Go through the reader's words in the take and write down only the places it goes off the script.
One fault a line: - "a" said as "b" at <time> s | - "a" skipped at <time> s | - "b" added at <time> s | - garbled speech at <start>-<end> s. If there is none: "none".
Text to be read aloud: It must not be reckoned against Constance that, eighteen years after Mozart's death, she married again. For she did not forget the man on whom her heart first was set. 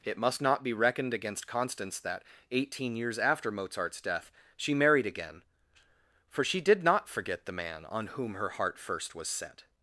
none